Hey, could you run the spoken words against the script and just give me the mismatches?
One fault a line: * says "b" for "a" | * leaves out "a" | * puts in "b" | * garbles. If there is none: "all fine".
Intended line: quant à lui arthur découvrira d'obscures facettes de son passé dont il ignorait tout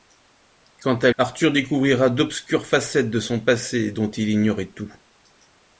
* leaves out "lui"